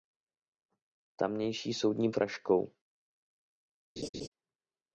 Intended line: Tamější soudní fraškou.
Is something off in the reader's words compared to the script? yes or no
no